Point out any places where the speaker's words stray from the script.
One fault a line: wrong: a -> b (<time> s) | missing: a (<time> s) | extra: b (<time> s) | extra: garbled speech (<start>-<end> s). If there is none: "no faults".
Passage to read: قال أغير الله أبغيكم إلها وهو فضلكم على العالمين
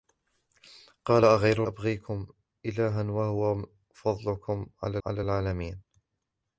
missing: الله (1.6 s)
extra: على (5.1 s)